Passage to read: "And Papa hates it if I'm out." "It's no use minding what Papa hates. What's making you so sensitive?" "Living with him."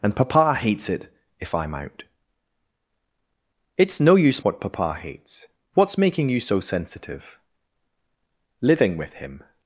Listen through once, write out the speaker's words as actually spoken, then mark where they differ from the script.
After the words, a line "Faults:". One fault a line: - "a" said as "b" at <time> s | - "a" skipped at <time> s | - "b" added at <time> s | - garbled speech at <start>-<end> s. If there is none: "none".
"And Papa hates it if I'm out." "It's no use what Papa hates. What's making you so sensitive?" "Living with him."
Faults:
- "minding" skipped at 4.4 s